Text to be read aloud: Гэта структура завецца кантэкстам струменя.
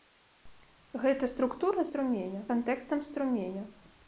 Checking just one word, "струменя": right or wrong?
right